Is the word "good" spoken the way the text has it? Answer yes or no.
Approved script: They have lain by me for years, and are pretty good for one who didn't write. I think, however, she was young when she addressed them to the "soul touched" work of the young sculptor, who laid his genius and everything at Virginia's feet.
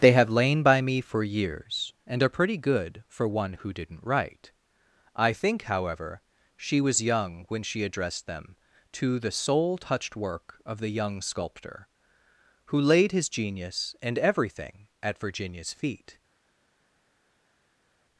yes